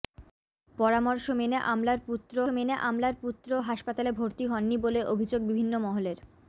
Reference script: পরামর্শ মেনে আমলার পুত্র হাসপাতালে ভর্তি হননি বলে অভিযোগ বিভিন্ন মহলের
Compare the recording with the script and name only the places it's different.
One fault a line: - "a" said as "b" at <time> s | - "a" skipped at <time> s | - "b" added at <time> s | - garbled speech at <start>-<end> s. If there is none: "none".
- "মেনে আমলার পুত্র" added at 2.5 s